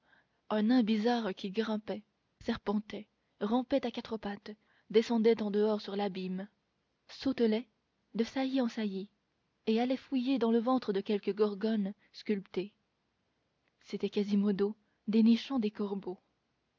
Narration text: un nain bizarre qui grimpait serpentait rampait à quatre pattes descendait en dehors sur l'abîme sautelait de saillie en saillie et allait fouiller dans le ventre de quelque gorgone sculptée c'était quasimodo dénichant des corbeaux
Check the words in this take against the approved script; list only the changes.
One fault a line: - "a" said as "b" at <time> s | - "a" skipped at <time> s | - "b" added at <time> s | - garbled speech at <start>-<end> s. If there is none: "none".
none